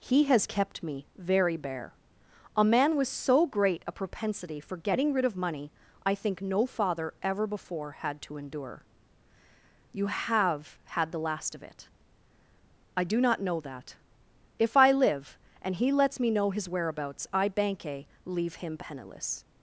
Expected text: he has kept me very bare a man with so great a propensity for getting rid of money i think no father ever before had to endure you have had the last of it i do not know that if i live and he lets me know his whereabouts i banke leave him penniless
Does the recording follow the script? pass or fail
pass